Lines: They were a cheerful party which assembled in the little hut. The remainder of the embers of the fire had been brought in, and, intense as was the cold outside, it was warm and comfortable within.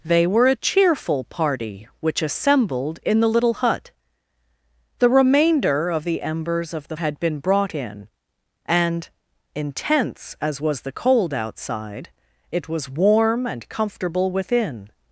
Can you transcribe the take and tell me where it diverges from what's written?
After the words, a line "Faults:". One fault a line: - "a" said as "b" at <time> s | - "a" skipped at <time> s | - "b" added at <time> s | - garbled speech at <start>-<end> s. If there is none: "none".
They were a cheerful party which assembled in the little hut. The remainder of the embers of the had been brought in, and, intense as was the cold outside, it was warm and comfortable within.
Faults:
- "fire" skipped at 7.0 s